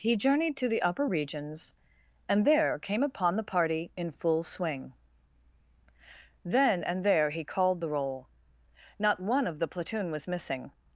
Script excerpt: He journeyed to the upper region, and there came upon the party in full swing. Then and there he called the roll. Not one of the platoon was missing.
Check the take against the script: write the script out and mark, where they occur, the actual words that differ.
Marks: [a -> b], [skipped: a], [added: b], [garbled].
He journeyed to the upper [region, -> regions] and there came upon the party in full swing. Then and there he called the roll. Not one of the platoon was missing.